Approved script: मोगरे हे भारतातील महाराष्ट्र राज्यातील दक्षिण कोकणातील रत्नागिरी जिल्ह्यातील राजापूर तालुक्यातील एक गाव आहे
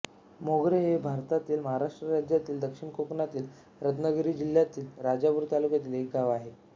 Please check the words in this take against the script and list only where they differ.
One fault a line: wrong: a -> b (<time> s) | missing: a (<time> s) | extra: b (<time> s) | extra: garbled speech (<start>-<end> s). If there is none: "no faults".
no faults